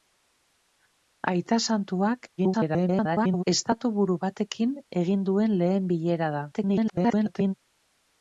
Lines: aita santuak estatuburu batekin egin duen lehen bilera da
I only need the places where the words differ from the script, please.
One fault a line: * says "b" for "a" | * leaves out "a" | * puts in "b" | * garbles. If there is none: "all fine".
* garbles
* garbles